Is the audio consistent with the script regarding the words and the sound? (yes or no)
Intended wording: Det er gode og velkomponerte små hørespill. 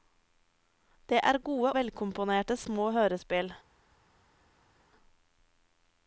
no